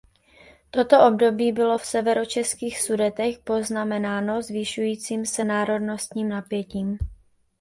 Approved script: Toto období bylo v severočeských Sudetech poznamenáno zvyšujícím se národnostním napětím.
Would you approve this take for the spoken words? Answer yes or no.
yes